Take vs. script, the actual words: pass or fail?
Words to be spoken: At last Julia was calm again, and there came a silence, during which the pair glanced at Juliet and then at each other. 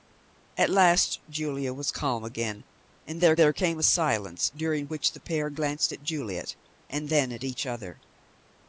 fail